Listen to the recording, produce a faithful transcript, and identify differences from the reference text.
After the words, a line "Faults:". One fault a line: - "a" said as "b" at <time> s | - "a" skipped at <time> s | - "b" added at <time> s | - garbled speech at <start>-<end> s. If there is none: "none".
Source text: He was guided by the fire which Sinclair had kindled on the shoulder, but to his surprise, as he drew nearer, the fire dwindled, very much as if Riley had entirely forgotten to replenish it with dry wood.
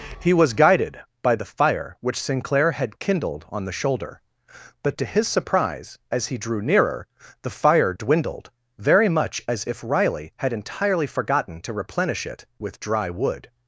He was guided by the fire which Sinclair had kindled on the shoulder, but to his surprise, as he drew nearer, the fire dwindled, very much as if Riley had entirely forgotten to replenish it with dry wood.
Faults:
none